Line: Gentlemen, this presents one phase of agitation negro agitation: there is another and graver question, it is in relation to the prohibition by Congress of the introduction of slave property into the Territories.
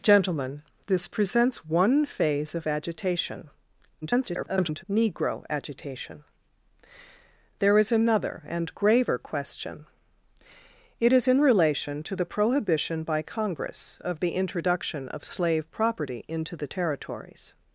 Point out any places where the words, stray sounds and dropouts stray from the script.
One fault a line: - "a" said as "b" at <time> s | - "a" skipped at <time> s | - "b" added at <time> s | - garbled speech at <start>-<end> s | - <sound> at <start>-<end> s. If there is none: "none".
- garbled speech at 4.0-4.8 s